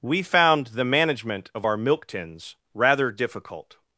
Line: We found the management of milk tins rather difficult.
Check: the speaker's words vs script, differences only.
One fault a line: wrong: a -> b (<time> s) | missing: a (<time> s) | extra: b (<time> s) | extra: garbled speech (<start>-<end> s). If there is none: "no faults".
extra: our (1.6 s)